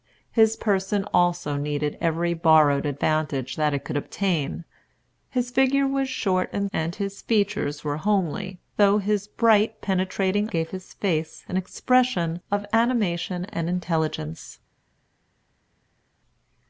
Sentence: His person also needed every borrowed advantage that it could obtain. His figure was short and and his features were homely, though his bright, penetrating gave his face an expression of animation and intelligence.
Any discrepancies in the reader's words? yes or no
no